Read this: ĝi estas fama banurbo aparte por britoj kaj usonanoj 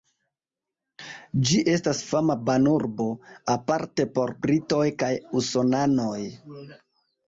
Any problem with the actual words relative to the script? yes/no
no